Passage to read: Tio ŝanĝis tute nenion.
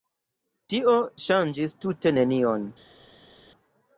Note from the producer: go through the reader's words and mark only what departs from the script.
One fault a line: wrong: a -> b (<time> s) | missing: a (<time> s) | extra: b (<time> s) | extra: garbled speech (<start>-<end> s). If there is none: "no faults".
no faults